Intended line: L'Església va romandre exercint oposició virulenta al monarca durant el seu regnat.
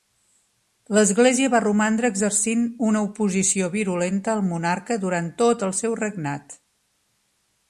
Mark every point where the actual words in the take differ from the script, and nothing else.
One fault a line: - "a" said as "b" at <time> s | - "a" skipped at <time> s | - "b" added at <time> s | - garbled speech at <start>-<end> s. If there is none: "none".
- "una" added at 2.9 s
- "tot" added at 5.4 s